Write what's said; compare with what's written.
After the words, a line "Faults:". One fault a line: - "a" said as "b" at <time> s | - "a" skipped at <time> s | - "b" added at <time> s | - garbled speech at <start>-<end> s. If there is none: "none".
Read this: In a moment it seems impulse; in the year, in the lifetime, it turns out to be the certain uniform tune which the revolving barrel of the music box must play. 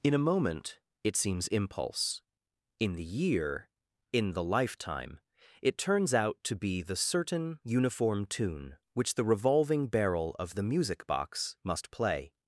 In a moment it seems impulse; in the year, in the lifetime, it turns out to be the certain uniform tune which the revolving barrel of the music box must play.
Faults:
none